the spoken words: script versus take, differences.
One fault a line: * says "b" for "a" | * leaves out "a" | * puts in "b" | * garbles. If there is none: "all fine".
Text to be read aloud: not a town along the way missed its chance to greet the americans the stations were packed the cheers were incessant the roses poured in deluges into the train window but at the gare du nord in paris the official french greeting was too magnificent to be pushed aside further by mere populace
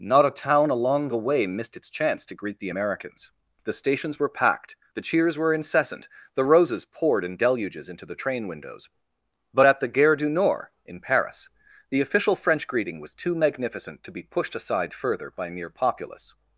* says "windows" for "window"